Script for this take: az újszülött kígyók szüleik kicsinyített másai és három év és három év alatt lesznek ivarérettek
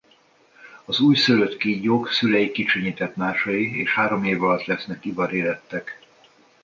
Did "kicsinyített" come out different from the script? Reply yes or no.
no